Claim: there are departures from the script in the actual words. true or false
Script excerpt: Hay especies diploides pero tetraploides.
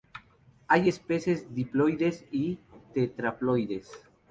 true